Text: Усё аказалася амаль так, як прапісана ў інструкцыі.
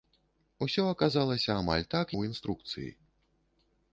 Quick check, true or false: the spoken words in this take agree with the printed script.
false